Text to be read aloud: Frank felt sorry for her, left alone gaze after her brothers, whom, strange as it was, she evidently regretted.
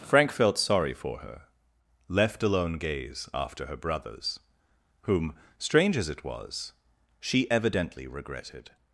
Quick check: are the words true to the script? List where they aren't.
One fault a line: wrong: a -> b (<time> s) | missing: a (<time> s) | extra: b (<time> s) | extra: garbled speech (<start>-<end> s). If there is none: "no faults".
no faults